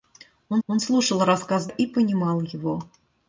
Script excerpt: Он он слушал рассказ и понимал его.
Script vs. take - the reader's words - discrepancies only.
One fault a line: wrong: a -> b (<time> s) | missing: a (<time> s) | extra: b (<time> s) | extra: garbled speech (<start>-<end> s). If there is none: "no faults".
no faults